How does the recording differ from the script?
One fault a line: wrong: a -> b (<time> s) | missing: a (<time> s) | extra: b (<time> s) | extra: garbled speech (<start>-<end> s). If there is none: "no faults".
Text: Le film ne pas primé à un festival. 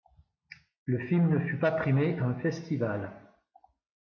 extra: fut (1.5 s)